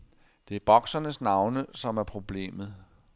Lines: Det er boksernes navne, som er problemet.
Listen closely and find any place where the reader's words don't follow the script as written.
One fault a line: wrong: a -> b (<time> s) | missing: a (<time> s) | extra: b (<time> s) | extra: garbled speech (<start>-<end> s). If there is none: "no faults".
no faults